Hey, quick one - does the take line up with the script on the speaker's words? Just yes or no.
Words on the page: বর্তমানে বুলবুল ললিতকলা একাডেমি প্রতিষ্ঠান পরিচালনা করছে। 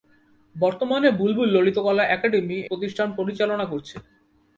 yes